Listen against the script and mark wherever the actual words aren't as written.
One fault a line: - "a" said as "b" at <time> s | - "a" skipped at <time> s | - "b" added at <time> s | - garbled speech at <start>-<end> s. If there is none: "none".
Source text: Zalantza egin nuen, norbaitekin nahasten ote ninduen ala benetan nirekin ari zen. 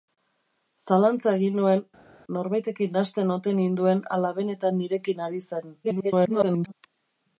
- garbled speech at 5.8-6.7 s